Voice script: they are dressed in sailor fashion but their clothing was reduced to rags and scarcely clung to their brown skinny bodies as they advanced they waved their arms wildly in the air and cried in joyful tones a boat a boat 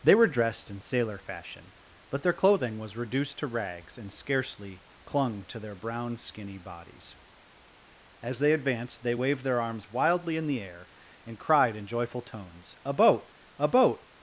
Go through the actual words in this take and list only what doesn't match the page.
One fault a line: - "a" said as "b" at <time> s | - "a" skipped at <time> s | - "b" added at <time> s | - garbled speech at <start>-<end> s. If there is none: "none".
- "are" said as "were" at 0.1 s